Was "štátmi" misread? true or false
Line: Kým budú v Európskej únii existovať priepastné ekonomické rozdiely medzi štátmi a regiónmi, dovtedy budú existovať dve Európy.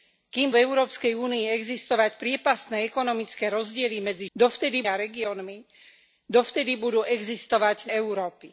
true